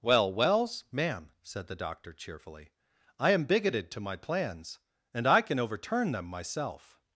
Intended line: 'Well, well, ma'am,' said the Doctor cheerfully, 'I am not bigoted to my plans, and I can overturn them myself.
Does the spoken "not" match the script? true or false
false